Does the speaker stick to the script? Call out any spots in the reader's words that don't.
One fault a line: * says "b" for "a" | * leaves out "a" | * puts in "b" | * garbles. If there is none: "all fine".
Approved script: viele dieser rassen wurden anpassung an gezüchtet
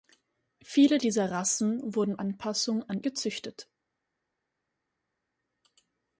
all fine